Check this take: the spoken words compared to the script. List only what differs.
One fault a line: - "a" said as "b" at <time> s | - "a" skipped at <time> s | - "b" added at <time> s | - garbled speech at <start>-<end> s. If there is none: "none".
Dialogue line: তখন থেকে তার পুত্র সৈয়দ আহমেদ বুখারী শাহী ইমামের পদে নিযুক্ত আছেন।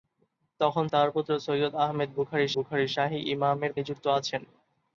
- "থেকে" skipped at 0.8 s
- "বুখারী" added at 2.5 s
- "পদে" skipped at 3.7 s